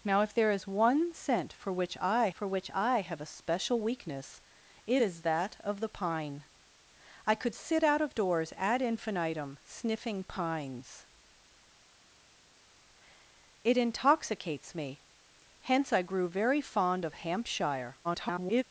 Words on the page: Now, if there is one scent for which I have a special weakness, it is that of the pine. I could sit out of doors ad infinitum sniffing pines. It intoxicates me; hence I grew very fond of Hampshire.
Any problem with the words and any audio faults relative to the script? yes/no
yes